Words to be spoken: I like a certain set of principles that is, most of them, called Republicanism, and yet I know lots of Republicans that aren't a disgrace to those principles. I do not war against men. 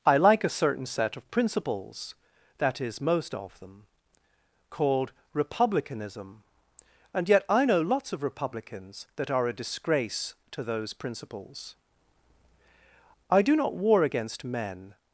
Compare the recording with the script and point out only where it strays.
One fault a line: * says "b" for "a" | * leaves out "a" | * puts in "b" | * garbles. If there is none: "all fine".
* says "are" for "aren't"